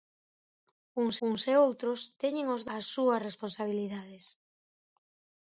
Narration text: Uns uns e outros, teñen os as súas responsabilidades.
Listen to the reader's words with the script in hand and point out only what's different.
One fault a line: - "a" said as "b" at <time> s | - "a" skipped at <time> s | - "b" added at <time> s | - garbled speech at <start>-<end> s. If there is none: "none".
none